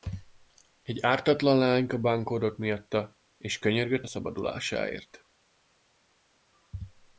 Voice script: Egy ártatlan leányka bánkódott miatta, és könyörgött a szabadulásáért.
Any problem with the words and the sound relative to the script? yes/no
no